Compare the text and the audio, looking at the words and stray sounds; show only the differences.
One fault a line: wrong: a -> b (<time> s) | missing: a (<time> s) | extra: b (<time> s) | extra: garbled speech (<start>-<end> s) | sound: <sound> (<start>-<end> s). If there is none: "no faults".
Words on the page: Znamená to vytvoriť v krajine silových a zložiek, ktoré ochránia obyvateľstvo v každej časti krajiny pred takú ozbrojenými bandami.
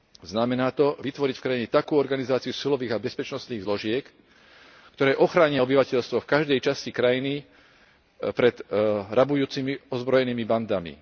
extra: takú organizáciu (1.7 s)
extra: bezpečnostných (3.0 s)
wrong: takú -> rabujúcimi (9.1 s)